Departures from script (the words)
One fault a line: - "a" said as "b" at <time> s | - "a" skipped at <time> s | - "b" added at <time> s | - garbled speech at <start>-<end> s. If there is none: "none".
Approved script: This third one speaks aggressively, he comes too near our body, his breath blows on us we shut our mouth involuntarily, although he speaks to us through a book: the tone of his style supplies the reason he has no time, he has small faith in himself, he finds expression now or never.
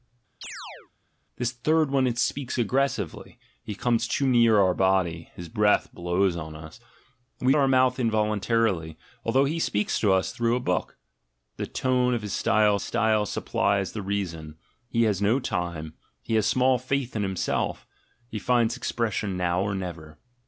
- "shut" skipped at 7.5 s
- "style" added at 12.8 s